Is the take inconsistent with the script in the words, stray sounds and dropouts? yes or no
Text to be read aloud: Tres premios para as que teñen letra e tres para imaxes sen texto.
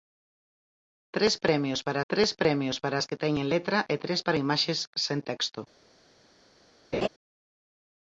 yes